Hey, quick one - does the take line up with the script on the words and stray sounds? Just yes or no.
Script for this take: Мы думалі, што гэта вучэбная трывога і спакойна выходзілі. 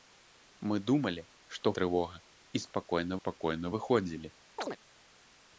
no